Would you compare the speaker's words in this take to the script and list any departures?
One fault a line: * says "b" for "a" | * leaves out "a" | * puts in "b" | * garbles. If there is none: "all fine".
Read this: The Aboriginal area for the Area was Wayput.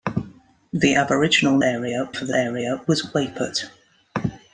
all fine